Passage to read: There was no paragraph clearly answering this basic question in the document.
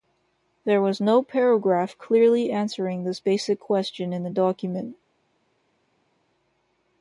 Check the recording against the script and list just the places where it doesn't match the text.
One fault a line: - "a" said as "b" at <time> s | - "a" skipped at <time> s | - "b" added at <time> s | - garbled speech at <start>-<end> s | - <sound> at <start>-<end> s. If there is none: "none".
none